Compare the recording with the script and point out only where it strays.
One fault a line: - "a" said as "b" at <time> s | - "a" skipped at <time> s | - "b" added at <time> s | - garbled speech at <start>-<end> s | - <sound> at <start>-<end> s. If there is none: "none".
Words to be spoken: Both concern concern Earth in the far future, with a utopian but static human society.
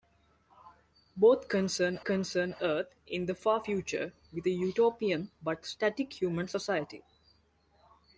none